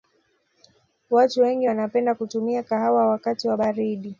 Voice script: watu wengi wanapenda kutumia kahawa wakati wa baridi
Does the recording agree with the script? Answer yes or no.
yes